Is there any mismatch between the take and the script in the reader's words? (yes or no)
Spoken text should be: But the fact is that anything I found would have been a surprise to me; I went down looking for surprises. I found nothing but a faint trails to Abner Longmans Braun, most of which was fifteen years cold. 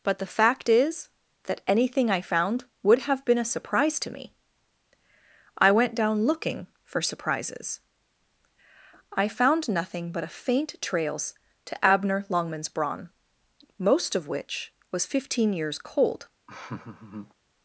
no